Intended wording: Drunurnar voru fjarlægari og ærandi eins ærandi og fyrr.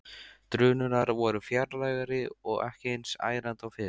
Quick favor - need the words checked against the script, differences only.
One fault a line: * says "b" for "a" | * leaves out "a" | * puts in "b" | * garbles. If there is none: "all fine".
* says "ekki" for "ærandi"